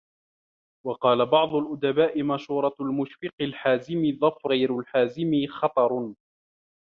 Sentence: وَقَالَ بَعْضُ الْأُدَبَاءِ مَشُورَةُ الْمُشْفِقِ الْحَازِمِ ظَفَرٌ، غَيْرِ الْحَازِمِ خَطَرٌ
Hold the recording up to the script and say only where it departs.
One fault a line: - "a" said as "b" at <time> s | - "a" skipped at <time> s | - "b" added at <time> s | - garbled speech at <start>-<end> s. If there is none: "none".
none